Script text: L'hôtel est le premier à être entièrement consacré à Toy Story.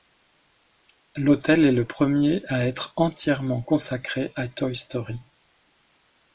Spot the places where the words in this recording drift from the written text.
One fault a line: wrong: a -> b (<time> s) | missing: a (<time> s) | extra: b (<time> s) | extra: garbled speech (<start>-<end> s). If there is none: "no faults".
no faults